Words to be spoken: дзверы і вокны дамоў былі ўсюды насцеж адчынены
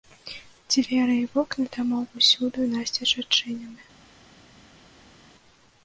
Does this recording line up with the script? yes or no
no